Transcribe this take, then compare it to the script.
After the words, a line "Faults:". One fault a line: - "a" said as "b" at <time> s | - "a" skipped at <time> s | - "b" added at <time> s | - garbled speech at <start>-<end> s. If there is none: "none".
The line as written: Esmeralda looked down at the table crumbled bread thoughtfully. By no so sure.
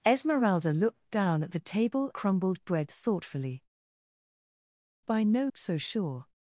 Esmeralda looked down at the table crumbled bread thoughtfully. By no so sure.
Faults:
none